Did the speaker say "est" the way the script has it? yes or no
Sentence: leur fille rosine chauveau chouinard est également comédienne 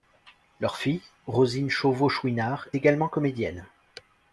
no